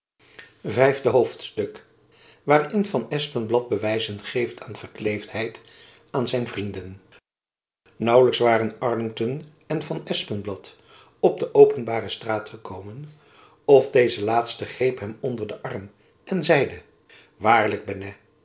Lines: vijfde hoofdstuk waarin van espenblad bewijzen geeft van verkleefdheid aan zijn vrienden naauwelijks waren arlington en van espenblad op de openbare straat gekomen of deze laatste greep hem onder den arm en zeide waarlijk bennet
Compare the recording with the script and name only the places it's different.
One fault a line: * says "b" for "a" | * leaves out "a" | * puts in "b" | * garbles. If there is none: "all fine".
all fine